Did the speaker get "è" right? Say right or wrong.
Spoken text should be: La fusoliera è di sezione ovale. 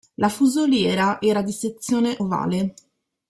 wrong